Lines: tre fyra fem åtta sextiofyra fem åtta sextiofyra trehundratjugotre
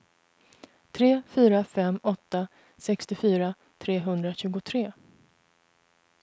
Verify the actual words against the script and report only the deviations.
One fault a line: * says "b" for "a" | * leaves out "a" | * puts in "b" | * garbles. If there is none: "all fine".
* leaves out "fem åtta sextiofyra"